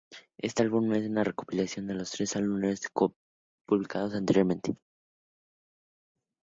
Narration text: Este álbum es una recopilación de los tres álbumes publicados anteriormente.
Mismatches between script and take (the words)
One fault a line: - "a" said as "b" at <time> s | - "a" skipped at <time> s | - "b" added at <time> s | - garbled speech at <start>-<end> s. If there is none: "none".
none